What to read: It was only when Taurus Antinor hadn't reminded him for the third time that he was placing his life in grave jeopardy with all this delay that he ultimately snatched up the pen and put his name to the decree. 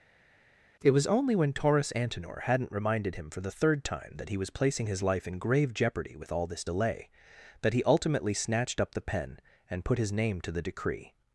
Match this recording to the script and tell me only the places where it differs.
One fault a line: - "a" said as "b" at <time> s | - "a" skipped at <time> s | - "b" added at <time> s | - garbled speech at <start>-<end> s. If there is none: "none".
none